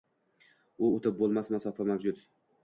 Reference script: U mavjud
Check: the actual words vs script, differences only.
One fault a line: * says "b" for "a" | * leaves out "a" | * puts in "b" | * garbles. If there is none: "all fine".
* puts in "o‘tib bo‘lmas masofa"